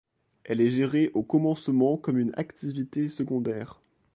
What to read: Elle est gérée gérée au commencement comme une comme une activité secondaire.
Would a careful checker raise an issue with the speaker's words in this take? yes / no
yes